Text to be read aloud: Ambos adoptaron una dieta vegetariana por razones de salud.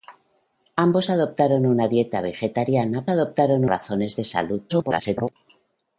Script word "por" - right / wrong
wrong